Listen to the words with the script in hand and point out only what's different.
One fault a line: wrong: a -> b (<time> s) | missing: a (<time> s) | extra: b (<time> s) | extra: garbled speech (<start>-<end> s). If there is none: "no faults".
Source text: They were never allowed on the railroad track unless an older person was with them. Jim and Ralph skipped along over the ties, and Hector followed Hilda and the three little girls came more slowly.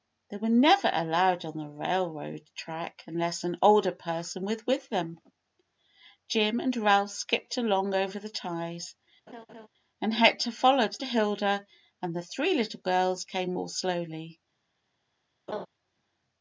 no faults